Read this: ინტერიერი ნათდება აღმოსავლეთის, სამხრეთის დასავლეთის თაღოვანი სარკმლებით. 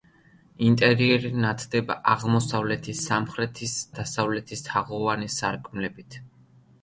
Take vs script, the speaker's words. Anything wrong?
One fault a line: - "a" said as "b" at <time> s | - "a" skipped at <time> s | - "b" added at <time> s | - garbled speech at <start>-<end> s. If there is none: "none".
none